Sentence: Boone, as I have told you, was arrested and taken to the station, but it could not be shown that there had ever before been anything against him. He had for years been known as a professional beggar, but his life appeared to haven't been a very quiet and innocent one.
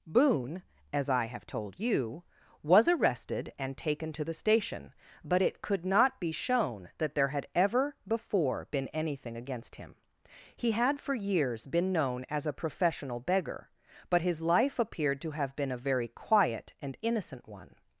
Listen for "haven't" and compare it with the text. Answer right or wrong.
wrong